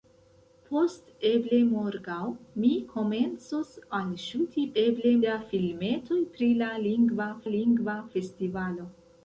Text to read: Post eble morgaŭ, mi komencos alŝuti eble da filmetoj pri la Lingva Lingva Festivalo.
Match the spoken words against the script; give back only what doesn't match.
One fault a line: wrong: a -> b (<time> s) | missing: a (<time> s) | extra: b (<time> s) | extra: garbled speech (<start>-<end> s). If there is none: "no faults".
no faults